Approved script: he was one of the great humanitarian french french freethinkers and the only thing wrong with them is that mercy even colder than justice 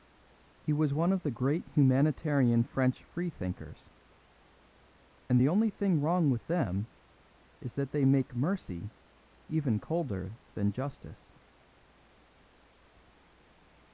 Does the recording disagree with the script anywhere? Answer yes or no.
yes